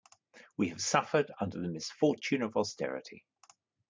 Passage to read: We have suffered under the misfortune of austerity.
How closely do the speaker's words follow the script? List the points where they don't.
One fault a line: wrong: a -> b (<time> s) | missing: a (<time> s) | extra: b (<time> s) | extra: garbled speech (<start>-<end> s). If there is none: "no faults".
no faults